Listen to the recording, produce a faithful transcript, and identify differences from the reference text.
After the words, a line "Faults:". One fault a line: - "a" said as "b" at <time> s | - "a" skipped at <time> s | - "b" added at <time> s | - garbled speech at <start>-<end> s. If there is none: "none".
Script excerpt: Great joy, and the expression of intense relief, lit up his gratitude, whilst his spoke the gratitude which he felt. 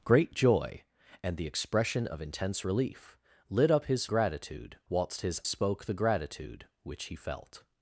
Great joy, and the expression of intense relief, lit up his gratitude, whilst his spoke the gratitude which he felt.
Faults:
none